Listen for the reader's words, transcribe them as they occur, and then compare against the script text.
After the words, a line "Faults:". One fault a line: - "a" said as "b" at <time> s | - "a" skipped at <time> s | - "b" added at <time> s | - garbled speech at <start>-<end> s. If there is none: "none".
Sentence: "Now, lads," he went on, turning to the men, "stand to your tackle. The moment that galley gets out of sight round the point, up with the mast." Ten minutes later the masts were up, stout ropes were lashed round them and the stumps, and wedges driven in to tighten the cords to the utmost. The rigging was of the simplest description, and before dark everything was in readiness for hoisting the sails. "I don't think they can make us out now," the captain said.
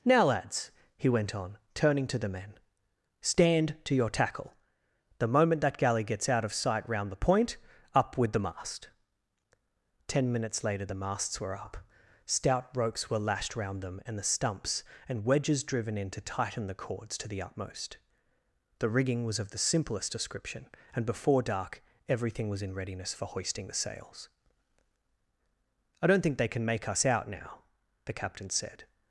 "Now, lads," he went on, turning to the men, "stand to your tackle. The moment that galley gets out of sight round the point, up with the mast." Ten minutes later the masts were up, stout ropes were lashed round them and the stumps, and wedges driven in to tighten the cords to the utmost. The rigging was of the simplest description, and before dark everything was in readiness for hoisting the sails. "I don't think they can make us out now," the captain said.
Faults:
none